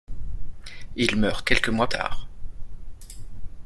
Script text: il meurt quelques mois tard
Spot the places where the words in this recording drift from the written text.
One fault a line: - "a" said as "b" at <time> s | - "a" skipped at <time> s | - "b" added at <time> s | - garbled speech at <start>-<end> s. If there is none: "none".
none